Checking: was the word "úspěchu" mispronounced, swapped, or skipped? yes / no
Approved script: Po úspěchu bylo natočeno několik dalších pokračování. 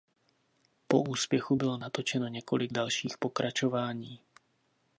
no